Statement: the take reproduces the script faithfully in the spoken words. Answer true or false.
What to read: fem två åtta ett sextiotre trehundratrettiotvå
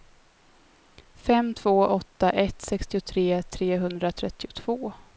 true